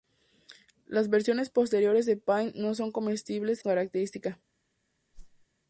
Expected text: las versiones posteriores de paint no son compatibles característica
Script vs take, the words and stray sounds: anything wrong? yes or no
yes